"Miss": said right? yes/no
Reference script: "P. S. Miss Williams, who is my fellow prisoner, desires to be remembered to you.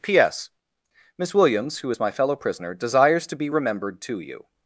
yes